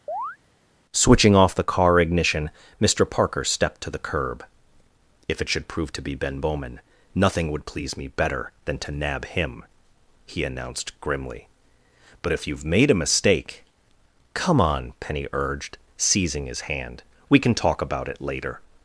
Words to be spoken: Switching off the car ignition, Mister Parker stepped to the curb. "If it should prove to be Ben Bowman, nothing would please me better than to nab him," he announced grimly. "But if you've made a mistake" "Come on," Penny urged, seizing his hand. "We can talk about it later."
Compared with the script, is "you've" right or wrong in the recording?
right